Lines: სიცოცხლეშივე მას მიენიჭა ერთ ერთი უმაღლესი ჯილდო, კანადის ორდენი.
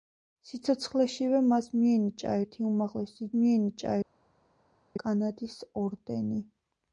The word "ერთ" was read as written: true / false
false